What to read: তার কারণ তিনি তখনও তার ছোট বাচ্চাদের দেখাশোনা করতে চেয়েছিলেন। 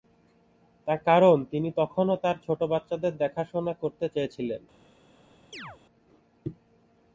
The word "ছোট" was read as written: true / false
true